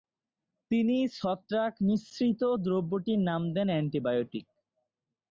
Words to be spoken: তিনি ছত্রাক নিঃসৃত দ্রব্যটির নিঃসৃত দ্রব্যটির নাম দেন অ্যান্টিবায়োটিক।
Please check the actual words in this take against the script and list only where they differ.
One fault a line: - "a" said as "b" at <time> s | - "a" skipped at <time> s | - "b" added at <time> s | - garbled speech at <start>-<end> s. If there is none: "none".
- "নিঃসৃত দ্রব্যটির" skipped at 3.2 s